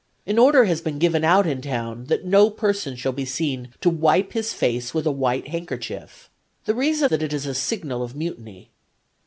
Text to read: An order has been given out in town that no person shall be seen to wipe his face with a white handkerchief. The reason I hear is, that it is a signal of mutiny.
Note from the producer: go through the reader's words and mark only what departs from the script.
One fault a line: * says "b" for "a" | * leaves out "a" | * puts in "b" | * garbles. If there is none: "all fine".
* leaves out "I hear is"